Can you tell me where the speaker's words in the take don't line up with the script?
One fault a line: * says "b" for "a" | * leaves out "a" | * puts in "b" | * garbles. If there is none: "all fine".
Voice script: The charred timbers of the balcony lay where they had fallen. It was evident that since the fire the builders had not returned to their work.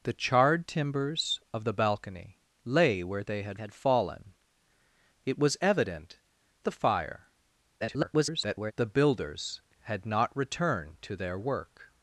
* puts in "had"
* leaves out "that since"
* garbles